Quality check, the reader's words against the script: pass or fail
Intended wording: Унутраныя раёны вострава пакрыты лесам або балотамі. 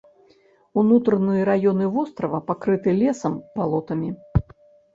fail